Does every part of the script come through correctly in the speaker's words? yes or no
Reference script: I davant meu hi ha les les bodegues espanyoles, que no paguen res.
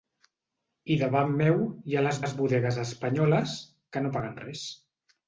yes